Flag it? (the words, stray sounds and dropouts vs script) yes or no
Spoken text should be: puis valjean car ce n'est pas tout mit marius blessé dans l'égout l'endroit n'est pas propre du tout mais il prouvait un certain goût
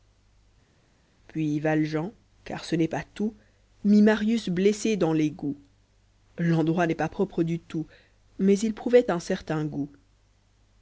no